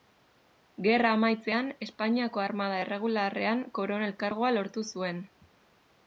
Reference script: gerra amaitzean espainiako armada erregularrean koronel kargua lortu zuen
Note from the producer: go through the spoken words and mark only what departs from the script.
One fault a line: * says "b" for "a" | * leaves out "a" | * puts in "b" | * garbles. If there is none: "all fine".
all fine